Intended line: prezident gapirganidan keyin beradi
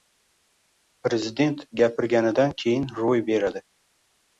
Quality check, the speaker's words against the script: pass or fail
fail